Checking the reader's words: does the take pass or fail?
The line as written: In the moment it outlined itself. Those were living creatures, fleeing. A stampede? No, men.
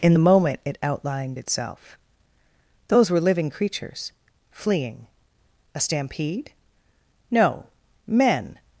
pass